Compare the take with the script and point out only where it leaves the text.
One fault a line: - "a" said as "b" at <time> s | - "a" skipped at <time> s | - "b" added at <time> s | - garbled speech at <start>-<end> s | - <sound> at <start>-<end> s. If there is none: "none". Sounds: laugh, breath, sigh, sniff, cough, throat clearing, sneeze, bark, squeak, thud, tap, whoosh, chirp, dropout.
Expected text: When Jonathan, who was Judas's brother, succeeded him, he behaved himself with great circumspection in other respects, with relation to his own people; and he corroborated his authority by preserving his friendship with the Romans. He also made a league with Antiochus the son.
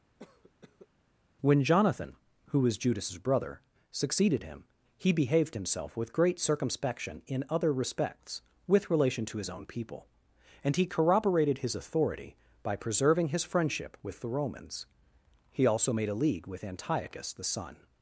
- cough at 0.2-0.9 s